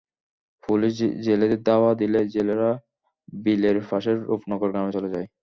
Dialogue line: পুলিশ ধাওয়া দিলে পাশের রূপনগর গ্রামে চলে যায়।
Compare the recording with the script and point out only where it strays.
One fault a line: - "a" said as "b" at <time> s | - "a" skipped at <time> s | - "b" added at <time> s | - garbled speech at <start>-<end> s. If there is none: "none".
- "জেলেদের" added at 1.2 s
- "জেলেরা বিলের" added at 2.3 s